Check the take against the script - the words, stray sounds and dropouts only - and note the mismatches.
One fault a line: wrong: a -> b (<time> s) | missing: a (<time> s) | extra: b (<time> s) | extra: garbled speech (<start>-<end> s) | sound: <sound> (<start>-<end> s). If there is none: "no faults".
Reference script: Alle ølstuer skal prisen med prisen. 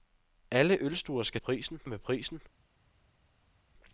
no faults